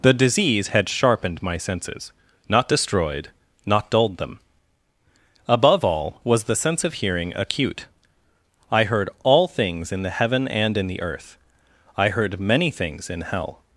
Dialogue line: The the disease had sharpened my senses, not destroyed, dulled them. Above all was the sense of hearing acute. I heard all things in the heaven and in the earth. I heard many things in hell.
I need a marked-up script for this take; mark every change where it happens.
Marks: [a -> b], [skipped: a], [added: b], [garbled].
The [skipped: the] disease had sharpened my senses, not destroyed, [added: not] dulled them. Above all was the sense of hearing acute. I heard all things in the heaven and in the earth. I heard many things in hell.